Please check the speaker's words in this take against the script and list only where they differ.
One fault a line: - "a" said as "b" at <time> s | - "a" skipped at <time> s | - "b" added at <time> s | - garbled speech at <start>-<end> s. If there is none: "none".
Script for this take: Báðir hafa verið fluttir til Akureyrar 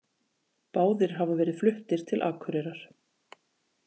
none